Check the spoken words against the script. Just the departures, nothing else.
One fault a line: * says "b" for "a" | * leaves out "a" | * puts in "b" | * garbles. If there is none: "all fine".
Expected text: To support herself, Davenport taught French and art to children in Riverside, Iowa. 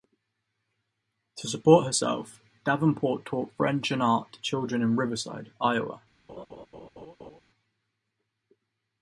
all fine